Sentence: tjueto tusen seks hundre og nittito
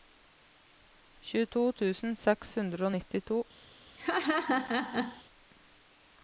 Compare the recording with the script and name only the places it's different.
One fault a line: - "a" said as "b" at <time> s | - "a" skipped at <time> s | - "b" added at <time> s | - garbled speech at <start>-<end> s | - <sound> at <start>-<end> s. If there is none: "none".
- laugh at 4.0-5.2 s